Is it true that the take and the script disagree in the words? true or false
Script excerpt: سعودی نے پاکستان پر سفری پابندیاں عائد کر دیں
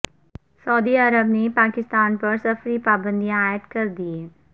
true